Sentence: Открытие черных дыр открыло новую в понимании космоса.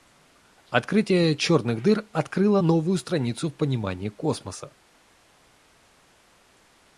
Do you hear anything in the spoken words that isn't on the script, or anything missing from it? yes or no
yes